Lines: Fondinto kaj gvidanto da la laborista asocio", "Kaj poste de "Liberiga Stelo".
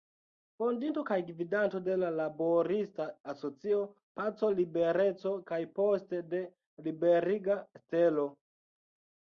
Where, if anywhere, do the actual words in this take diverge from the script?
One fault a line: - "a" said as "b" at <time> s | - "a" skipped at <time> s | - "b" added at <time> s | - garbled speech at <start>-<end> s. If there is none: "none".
- "da" said as "de" at 1.9 s
- "Paco Libereco" added at 4.2 s